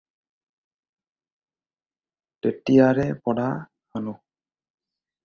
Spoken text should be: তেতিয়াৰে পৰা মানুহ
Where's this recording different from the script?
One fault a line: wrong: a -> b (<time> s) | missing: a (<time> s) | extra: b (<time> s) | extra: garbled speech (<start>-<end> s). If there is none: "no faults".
no faults